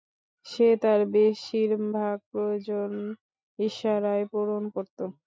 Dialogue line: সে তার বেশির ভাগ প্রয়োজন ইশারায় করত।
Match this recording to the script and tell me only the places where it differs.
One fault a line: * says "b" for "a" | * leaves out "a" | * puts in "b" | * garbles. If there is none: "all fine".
* puts in "পূরণ"